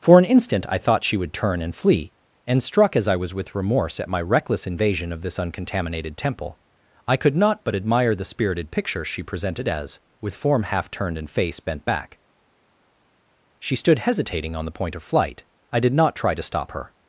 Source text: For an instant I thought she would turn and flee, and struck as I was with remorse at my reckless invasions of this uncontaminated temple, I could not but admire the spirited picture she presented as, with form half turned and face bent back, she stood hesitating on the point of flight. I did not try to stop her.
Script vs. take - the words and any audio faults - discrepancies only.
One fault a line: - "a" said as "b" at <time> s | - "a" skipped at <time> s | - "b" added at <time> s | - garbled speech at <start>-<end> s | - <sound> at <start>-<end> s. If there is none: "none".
- "invasions" said as "invasion" at 4.7 s